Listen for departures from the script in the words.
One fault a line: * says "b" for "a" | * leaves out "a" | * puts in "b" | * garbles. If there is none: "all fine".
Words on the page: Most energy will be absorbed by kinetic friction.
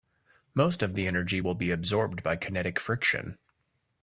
* puts in "of the"